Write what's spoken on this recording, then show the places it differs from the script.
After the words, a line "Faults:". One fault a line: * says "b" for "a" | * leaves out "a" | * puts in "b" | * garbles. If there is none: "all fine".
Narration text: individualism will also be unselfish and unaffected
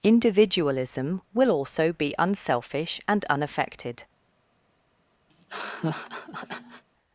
individualism will also be unselfish and unaffected
Faults:
all fine